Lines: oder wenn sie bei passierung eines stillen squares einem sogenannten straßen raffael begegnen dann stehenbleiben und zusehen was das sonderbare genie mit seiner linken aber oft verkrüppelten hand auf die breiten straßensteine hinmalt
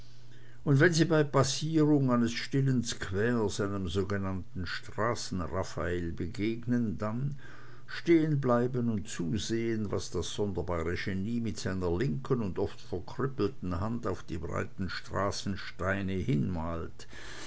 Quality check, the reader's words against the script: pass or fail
fail